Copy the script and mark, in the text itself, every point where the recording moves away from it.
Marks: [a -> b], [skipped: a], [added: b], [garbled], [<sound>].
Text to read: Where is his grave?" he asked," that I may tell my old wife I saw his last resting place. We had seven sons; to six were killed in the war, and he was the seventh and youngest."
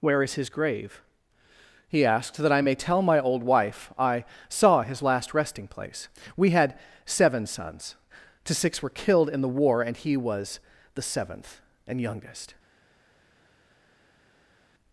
Where is his grave?" he asked," that I may tell my old wife I saw his last resting place. We had seven sons; to six were killed in the war, and he was the seventh and youngest."